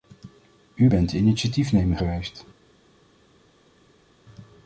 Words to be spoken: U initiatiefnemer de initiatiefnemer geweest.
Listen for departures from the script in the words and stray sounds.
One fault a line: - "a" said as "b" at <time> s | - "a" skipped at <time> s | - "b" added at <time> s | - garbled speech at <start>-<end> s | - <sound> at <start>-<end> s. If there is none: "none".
- "initiatiefnemer" said as "bent" at 0.9 s